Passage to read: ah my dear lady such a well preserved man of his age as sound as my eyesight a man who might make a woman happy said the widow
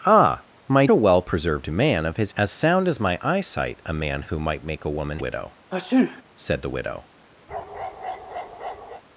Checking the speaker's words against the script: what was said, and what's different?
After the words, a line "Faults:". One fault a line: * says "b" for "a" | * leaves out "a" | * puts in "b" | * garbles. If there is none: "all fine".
ah my a well preserved man of his as sound as my eyesight a man who might make a woman widow said the widow
Faults:
* leaves out "dear lady such"
* leaves out "age"
* says "widow" for "happy"